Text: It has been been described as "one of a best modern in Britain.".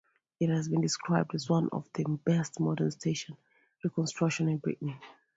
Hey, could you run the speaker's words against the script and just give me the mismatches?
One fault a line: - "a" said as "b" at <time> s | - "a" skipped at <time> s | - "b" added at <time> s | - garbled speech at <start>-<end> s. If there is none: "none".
- "been" skipped at 0.8 s
- "a" said as "the" at 1.9 s
- "station reconstructions" added at 2.9 s